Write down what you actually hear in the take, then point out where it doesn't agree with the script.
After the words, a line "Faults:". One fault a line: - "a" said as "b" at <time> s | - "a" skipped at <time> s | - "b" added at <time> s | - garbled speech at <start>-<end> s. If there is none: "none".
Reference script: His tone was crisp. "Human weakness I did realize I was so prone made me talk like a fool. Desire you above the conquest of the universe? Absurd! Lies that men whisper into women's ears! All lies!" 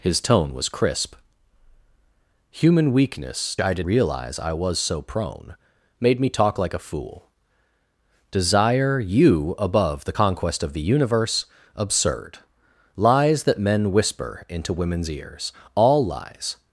His tone was crisp. "Human weakness I did realize I was so prone made me talk like a fool. Desire you above the conquest of the universe? Absurd! Lies that men whisper into women's ears! All lies!"
Faults:
none